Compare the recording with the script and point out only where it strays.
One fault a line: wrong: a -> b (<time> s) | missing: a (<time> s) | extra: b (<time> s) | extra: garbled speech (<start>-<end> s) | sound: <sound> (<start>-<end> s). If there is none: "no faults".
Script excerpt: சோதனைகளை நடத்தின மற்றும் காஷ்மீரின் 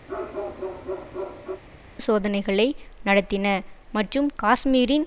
sound: bark (0.1-1.6 s)